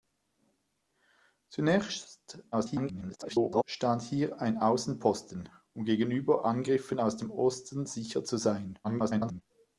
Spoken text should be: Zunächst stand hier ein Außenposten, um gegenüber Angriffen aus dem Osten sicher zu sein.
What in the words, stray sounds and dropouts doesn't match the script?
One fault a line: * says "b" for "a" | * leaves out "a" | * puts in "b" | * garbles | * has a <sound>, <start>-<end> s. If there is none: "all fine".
* garbles
* garbles